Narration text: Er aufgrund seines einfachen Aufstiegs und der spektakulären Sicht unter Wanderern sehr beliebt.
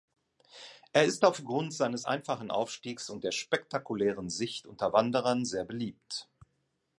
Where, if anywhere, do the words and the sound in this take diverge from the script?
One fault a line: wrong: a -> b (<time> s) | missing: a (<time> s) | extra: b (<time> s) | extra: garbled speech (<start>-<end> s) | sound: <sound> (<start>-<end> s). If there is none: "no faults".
extra: ist (1.1 s)